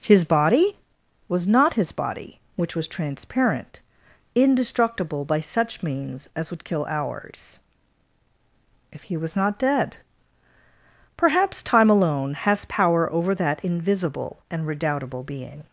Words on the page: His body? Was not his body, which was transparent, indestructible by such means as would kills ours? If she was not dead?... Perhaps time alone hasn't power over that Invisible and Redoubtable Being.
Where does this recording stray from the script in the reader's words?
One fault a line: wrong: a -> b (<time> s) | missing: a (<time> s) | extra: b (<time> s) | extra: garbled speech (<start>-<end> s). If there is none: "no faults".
wrong: kills -> kill (6.6 s)
wrong: she -> he (9.0 s)
wrong: hasn't -> has (12.3 s)